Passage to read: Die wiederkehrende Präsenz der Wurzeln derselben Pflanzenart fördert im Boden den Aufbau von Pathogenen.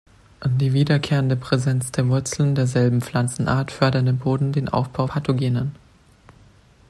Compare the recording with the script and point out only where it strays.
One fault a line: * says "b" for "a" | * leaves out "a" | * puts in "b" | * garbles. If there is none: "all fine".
* leaves out "von"